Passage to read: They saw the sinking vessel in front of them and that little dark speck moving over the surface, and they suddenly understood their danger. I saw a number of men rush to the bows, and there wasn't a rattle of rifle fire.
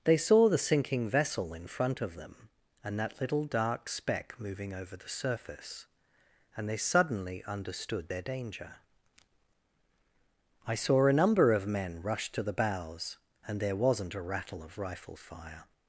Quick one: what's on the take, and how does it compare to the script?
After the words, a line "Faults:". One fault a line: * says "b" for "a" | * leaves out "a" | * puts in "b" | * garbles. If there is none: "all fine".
They saw the sinking vessel in front of them and that little dark speck moving over the surface, and they suddenly understood their danger. I saw a number of men rush to the bows, and there wasn't a rattle of rifle fire.
Faults:
all fine